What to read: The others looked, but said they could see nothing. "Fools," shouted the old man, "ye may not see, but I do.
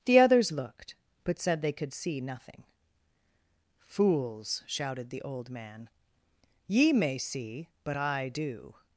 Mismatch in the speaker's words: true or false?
true